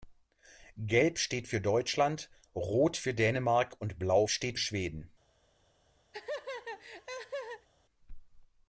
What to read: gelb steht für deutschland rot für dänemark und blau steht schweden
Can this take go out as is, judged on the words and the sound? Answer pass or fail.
fail